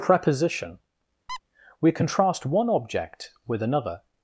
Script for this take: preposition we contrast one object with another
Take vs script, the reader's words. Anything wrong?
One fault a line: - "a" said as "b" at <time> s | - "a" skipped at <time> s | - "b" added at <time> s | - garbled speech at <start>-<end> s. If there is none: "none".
none